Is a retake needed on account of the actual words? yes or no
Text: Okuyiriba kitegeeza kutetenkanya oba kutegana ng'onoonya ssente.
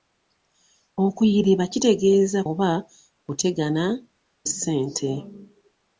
yes